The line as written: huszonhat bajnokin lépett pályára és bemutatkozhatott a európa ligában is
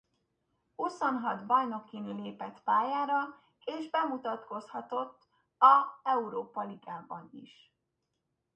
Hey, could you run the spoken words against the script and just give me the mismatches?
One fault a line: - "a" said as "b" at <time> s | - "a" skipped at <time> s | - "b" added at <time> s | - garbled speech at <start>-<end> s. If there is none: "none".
none